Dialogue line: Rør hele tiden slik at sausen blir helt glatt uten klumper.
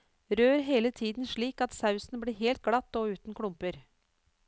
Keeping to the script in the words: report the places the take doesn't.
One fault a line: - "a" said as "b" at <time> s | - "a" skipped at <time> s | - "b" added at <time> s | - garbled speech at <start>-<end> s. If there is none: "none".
- "og" added at 2.9 s